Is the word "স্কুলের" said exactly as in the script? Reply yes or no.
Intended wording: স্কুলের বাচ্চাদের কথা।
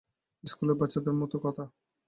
yes